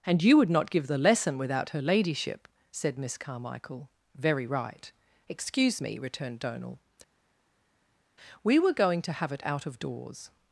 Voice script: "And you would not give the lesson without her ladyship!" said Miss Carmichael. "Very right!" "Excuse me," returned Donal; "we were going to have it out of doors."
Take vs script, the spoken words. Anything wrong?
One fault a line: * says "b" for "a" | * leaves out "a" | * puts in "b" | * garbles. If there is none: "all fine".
all fine